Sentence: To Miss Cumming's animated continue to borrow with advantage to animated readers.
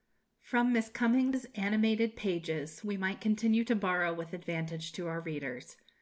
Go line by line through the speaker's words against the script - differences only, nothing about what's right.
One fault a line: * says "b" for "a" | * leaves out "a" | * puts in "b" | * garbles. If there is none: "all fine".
* says "From" for "To"
* puts in "pages we might"
* says "our" for "animated"